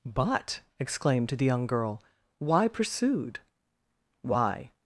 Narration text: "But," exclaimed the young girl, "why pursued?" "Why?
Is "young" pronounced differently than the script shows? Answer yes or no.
no